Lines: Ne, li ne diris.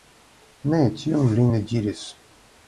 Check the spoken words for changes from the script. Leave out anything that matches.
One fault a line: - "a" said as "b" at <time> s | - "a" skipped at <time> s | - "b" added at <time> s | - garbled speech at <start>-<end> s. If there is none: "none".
- "tion" added at 1.0 s